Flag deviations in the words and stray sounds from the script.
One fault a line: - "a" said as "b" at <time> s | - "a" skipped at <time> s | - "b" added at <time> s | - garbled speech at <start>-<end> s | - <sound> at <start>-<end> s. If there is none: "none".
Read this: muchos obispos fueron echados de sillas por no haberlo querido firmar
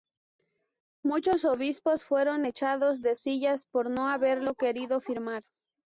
none